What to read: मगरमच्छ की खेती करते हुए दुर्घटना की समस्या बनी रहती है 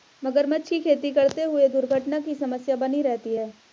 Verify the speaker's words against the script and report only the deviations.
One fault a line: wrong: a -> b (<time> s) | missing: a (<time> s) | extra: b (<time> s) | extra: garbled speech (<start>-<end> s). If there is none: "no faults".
no faults